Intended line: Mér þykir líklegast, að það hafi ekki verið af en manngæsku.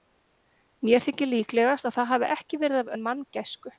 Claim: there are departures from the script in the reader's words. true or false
false